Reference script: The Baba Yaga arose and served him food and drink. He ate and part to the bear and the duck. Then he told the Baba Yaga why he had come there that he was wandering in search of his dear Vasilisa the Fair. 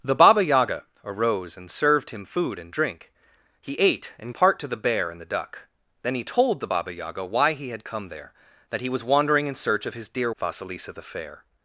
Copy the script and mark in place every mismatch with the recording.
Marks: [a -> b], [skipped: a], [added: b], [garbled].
The Baba Yaga arose and served him food and drink. He ate and part to the bear and the duck. Then he told the Baba Yaga why he had come there that he was wandering in search of his dear Vasilisa the Fair.